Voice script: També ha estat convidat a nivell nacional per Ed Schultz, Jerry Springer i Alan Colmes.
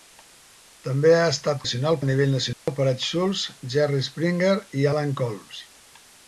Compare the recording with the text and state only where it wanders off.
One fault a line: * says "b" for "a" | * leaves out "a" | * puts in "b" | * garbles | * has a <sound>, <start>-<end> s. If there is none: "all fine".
* says "nacional" for "convidat"
* has a dropout, 2.5-2.7 s